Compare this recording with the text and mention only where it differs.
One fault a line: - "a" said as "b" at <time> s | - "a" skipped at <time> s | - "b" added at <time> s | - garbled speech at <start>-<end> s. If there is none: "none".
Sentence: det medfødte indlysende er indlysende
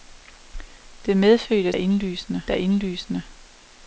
none